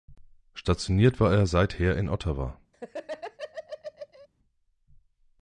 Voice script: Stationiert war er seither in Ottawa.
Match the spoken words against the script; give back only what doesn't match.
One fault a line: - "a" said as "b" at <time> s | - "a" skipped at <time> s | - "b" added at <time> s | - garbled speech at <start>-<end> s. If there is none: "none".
none